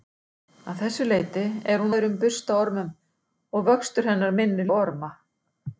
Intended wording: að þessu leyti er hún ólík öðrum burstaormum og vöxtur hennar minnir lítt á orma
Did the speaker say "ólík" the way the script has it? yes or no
no